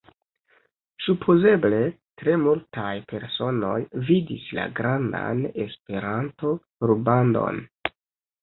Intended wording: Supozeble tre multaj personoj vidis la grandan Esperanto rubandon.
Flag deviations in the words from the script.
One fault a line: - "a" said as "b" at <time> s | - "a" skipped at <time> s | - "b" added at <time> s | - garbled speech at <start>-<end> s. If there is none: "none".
none